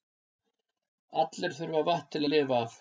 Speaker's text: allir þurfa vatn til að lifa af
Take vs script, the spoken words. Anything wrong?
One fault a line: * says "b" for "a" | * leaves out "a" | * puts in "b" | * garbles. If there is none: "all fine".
all fine